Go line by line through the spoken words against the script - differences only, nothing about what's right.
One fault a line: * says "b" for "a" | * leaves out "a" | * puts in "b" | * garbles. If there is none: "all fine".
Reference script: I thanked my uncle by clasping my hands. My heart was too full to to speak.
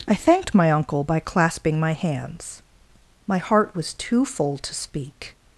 * leaves out "to"